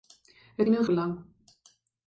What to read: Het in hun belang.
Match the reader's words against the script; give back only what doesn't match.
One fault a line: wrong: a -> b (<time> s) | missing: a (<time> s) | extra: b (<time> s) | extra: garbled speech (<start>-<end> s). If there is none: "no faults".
no faults